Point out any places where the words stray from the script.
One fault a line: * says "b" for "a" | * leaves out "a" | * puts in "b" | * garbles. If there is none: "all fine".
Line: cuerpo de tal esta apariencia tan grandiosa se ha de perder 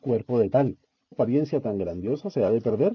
* leaves out "esta"